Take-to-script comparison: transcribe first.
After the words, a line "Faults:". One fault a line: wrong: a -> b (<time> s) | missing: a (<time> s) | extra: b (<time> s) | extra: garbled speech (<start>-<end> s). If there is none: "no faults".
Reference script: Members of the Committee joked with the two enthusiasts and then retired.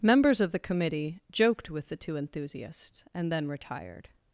Members of the Committee joked with the two enthusiasts and then retired.
Faults:
no faults